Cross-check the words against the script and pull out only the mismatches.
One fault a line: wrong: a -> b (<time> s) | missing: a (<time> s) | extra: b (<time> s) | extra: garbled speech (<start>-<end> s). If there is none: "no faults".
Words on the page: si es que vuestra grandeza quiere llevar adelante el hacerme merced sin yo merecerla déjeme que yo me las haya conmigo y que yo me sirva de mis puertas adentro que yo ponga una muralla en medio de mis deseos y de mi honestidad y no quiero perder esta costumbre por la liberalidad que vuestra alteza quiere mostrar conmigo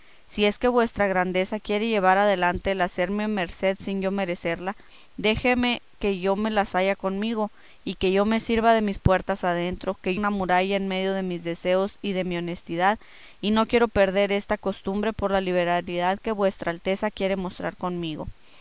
missing: yo ponga (10.2 s)